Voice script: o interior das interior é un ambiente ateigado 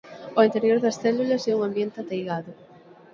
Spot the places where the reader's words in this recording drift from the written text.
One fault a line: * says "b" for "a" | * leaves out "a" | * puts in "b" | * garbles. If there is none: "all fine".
* says "células" for "interior"